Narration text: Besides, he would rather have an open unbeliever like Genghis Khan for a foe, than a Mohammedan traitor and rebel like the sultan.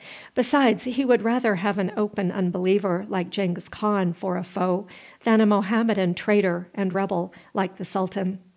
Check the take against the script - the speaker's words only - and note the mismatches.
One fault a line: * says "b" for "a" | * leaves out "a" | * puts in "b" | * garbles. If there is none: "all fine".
all fine